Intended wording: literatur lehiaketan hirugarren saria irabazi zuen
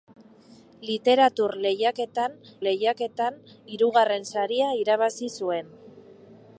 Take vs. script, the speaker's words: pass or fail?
fail